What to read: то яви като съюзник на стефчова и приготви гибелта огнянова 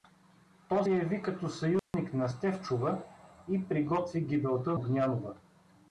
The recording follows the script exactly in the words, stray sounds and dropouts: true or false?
false